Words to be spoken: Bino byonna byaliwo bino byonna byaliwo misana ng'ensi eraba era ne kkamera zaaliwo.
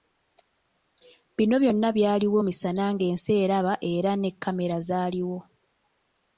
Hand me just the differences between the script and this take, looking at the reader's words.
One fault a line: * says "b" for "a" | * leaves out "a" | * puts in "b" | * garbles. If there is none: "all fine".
* leaves out "bino byonna byaliwo"